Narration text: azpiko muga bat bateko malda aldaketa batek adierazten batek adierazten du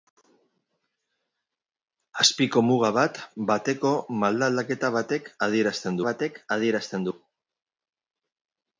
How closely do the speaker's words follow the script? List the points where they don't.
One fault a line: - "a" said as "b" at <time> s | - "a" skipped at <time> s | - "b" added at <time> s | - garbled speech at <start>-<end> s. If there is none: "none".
none